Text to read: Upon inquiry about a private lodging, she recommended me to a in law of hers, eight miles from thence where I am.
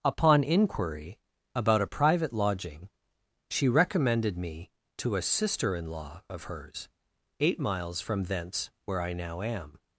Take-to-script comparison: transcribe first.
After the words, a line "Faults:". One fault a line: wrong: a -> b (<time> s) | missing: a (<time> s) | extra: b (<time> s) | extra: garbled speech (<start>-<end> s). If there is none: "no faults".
Upon inquiry about a private lodging, she recommended me to a sister in law of hers, eight miles from thence where I now am.
Faults:
extra: sister (5.2 s)
extra: now (9.1 s)